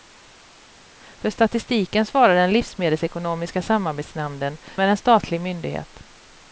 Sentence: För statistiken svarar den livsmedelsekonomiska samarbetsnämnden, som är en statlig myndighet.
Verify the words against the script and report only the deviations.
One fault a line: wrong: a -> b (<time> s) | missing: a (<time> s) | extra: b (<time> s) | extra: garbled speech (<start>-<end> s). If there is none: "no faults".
missing: som (4.6 s)